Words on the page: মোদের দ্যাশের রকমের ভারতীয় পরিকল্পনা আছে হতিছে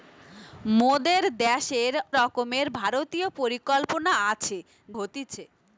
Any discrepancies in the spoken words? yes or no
no